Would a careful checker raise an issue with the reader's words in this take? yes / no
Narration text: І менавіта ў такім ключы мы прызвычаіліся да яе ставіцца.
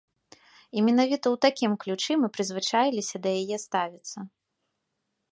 no